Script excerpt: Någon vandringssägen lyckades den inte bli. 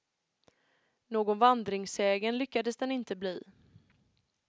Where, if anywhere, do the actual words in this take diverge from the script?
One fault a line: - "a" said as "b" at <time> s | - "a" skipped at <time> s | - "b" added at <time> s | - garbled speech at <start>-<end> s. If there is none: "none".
none